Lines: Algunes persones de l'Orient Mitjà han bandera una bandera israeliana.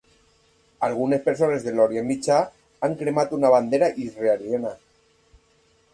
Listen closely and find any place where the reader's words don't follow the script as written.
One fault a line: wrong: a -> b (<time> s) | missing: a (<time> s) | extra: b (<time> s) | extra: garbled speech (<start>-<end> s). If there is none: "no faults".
wrong: bandera -> cremat (3.0 s)